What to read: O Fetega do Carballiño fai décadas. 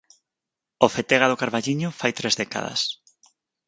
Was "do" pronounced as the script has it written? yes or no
yes